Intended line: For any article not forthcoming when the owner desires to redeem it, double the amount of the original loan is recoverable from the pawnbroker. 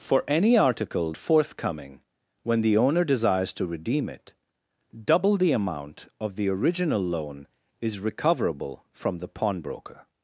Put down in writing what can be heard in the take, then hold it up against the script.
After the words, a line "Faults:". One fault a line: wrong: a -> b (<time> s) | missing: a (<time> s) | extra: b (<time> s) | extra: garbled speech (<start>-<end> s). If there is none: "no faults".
For any article forthcoming when the owner desires to redeem it, double the amount of the original loan is recoverable from the pawnbroker.
Faults:
missing: not (1.1 s)